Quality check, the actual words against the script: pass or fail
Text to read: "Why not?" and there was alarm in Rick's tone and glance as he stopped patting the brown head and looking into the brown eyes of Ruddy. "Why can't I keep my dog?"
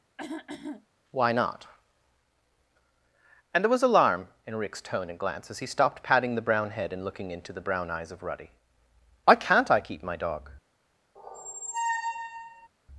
pass